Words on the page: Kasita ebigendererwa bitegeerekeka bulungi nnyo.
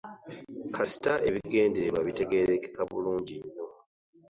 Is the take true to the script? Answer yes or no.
yes